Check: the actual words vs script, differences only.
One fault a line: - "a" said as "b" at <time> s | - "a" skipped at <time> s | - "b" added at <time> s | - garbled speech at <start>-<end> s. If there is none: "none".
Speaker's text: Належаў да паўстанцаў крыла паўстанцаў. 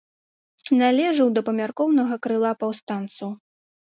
- "паўстанцаў" said as "памяркоўнага" at 1.5 s